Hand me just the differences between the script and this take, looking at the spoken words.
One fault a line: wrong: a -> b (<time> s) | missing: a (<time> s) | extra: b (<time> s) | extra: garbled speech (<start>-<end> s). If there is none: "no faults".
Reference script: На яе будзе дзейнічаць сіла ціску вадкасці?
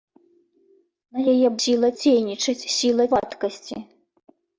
wrong: будзе -> сіла (1.6 s)
missing: ціску (3.0 s)